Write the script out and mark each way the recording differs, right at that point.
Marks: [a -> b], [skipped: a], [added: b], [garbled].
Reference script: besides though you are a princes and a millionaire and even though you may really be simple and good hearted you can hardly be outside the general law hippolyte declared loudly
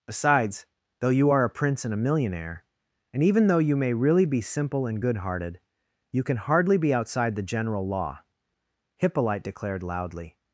besides though you are a [princes -> prince] and a millionaire and even though you may really be simple and good hearted you can hardly be outside the general law hippolyte declared loudly